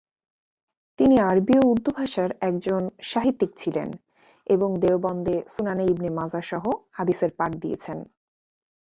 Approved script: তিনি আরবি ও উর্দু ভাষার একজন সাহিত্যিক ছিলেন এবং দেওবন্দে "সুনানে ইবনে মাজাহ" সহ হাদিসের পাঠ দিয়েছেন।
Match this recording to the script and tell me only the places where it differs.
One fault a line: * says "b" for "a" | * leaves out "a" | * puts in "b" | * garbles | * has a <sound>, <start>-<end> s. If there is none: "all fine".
all fine